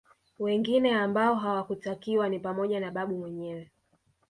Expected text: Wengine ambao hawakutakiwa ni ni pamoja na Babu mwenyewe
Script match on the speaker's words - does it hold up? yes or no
no